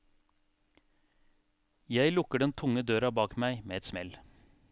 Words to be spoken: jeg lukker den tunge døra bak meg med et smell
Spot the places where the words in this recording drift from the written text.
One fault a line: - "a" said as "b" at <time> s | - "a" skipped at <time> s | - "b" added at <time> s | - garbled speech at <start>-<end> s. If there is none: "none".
none